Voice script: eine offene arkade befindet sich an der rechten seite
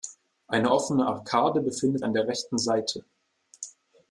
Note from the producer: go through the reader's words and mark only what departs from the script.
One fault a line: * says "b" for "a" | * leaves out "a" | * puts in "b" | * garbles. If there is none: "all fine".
* leaves out "sich"